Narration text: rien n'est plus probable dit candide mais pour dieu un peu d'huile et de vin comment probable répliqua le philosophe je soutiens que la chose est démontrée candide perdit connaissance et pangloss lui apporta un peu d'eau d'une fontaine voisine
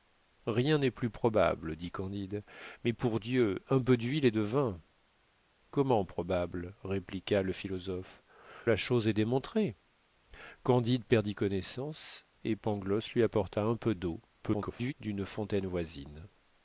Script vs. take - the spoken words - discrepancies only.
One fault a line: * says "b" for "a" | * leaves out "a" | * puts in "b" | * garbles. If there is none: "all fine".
* leaves out "je soutiens que"
* garbles